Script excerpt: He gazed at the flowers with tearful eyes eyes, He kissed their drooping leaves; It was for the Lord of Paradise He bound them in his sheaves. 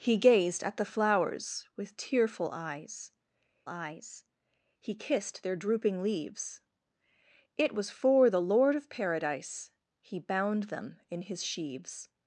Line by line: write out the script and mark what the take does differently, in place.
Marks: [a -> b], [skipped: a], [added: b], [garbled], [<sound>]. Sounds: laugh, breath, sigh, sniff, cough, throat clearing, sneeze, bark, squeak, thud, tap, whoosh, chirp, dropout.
He gazed at the flowers with tearful eyes eyes, He kissed their drooping leaves; It was for the Lord of Paradise He bound them in his sheaves.